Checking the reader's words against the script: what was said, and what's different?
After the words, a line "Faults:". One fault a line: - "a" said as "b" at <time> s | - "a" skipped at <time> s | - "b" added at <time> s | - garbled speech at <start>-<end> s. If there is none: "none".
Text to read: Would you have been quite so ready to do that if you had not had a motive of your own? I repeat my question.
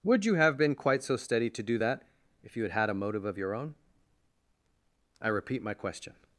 Would you have been quite so steady to do that if you had had a motive of your own? I repeat my question.
Faults:
- "ready" said as "steady" at 1.1 s
- "not" skipped at 2.7 s